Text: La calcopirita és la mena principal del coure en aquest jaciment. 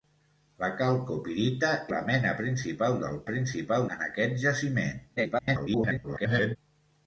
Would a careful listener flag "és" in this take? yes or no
yes